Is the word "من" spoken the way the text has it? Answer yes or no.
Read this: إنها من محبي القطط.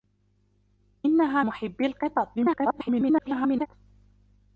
no